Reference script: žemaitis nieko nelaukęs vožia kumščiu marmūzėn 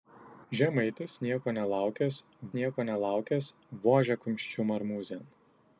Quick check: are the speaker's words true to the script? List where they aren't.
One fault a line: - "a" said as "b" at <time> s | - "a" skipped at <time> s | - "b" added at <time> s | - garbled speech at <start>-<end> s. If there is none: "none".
- "nieko nelaukęs" added at 2.6 s